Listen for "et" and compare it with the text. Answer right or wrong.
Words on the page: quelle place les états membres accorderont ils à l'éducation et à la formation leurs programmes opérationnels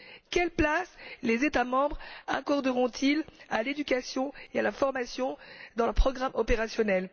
right